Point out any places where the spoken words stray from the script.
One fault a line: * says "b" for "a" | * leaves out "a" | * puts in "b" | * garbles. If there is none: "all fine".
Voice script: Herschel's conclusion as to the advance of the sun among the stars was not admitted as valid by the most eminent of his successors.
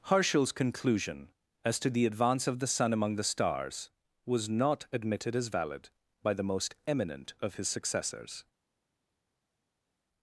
all fine